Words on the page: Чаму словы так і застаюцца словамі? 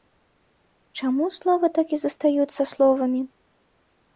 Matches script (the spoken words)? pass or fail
pass